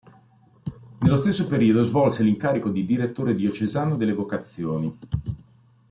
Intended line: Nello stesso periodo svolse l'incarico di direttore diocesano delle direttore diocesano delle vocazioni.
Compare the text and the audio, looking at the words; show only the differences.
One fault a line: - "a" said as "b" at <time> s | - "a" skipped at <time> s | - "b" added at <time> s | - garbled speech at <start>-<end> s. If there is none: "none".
- "direttore diocesano delle" skipped at 4.1 s